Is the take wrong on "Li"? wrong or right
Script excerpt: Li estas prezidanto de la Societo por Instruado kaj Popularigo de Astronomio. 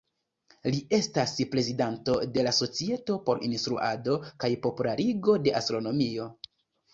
right